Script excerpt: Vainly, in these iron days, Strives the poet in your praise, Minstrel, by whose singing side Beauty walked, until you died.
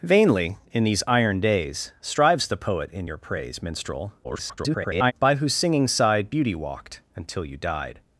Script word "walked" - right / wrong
right